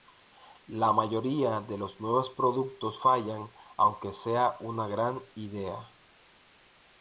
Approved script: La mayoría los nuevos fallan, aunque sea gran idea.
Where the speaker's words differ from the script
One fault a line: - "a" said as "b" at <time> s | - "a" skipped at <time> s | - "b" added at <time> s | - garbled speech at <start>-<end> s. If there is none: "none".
- "de" added at 1.6 s
- "productos" added at 2.3 s
- "una" added at 4.6 s